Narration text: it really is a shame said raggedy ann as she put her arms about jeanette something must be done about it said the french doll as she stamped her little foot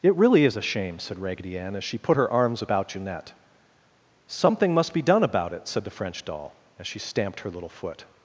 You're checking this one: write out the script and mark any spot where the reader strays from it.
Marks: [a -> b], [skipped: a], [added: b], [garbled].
it really is a shame said raggedy ann as she put her arms about jeanette something must be done about it said the french doll as she stamped her little foot